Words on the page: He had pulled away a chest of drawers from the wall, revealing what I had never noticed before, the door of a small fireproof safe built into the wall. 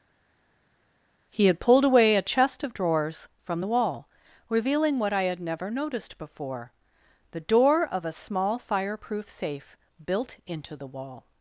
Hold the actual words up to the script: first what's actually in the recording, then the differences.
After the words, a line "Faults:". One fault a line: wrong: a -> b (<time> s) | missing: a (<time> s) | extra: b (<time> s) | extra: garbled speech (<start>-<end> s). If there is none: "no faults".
He had pulled away a chest of drawers from the wall, revealing what I had never noticed before, the door of a small fireproof safe built into the wall.
Faults:
no faults